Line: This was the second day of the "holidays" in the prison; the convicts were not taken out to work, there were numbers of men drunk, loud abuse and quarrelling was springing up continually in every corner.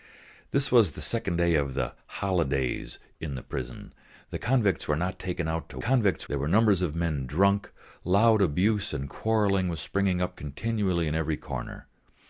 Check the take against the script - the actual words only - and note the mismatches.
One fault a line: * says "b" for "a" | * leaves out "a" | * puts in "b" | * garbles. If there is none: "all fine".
* says "convicts" for "work"